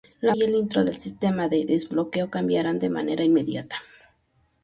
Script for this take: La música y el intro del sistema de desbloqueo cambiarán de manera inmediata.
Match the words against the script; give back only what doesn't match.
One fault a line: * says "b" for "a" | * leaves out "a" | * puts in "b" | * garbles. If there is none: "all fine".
* leaves out "música"